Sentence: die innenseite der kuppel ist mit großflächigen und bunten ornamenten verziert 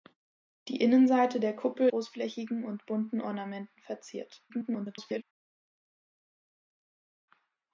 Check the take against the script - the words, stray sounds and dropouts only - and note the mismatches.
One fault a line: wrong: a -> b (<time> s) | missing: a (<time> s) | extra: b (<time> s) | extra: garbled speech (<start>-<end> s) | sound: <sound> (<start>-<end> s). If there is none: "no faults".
missing: ist mit (1.9 s)
extra: garbled speech (4.5-5.2 s)